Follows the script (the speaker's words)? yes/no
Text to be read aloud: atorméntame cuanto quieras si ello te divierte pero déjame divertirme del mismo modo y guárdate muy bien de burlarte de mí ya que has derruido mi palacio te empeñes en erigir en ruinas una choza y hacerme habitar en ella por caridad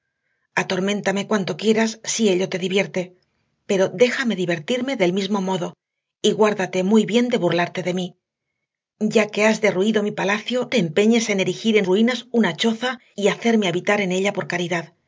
yes